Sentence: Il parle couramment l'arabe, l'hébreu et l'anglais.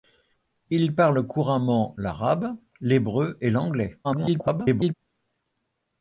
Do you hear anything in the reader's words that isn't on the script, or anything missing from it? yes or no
yes